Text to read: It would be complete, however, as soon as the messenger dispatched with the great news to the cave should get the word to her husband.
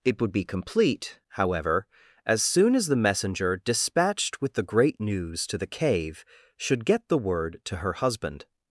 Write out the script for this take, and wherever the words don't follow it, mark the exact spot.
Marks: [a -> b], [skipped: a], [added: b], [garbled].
It would be complete, however, as soon as the messenger dispatched with the great news to the cave should get the word to her husband.